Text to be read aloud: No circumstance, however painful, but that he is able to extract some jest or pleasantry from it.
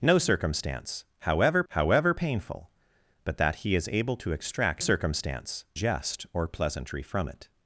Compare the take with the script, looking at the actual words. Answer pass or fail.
fail